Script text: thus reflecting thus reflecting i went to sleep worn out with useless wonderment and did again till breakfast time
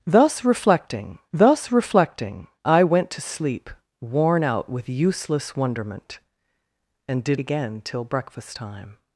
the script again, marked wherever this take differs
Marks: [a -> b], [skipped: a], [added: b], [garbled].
thus reflecting thus reflecting i went to sleep worn out with useless wonderment and did again till breakfast time